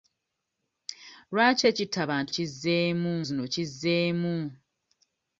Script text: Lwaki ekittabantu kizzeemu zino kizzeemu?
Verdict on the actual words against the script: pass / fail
pass